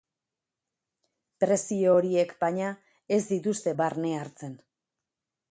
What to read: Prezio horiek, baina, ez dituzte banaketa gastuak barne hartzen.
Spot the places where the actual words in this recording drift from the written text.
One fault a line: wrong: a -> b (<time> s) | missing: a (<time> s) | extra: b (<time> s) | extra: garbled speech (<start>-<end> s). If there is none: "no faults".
missing: banaketa gastuak (3.7 s)